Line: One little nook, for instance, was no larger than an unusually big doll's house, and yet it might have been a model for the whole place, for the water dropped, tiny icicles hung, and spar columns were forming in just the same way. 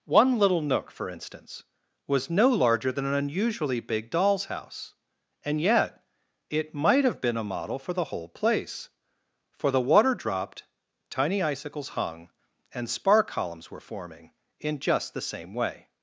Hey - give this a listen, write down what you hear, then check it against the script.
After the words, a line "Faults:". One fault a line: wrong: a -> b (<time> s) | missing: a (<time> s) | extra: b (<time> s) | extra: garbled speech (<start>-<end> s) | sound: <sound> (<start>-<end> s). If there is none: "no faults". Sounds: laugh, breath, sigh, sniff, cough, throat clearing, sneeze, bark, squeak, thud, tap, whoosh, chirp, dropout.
One little nook, for instance, was no larger than an unusually big doll's house, and yet it might have been a model for the whole place, for the water dropped, tiny icicles hung, and spar columns were forming in just the same way.
Faults:
no faults